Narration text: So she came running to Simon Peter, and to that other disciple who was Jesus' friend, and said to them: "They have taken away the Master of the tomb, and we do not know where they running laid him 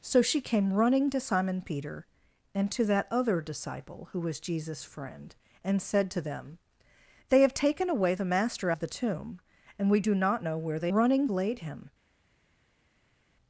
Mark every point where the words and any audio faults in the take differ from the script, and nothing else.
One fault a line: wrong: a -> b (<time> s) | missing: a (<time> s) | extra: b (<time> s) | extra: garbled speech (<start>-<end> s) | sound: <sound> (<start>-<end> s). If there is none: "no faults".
no faults